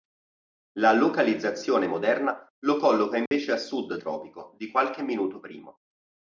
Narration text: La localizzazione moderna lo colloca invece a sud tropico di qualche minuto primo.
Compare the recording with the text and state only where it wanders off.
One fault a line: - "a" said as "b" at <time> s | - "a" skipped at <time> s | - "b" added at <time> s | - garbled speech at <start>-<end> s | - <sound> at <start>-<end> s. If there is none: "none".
- dropout at 3.3-3.3 s